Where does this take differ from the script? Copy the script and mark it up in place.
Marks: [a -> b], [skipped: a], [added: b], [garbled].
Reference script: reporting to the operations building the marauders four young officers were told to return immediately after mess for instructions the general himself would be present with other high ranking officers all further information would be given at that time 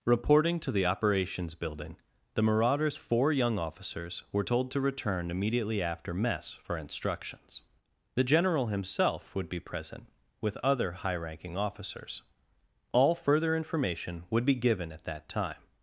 reporting to the operations building the marauders four young officers were told to return immediately after mess for instructions the general himself would be present with other high ranking officers all further information would be given at that time